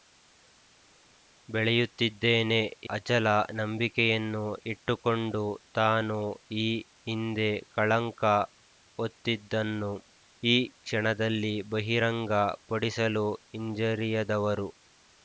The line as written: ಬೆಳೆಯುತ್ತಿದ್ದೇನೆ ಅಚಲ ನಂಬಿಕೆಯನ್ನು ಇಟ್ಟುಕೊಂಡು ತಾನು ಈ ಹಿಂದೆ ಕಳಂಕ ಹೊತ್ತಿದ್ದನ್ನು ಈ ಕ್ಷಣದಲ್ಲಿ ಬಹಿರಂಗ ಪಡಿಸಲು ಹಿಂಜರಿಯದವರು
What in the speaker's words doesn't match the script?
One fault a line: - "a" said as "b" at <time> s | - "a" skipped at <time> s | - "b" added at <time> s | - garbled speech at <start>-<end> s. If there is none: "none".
none